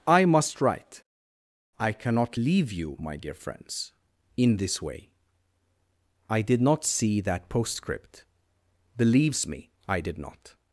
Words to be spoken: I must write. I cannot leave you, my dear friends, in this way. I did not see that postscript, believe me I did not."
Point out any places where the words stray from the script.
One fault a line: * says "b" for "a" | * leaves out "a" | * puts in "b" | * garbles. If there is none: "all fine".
* says "believes" for "believe"